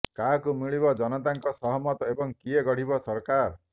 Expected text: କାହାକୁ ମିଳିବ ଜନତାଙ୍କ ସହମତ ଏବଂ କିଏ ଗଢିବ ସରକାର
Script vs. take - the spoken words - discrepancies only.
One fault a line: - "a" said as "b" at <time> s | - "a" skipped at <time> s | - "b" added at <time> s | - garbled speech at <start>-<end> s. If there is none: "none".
none